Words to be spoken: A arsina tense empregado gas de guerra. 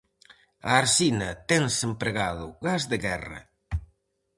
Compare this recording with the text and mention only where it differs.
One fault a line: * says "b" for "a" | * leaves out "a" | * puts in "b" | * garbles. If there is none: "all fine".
all fine